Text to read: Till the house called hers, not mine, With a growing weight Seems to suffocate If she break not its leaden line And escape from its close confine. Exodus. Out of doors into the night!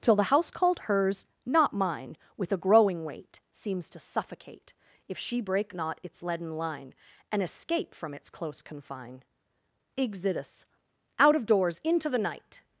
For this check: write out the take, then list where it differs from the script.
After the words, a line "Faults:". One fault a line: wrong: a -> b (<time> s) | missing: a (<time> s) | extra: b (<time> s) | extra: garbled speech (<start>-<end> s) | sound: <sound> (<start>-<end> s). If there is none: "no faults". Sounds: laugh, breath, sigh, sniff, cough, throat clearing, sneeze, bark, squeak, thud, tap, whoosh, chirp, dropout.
Till the house called hers, not mine, With a growing weight Seems to suffocate If she break not its leaden line And escape from its close confine. Exodus. Out of doors into the night!
Faults:
no faults